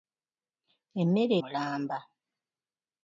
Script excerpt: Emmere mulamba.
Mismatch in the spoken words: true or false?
false